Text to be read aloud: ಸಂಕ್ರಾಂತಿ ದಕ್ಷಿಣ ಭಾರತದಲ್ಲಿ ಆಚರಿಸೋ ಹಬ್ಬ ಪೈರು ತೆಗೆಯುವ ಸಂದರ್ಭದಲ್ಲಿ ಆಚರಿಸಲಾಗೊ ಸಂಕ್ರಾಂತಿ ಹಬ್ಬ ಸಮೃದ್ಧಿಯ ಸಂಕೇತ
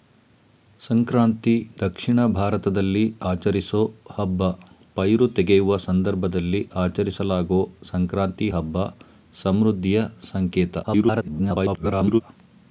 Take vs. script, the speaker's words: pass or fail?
fail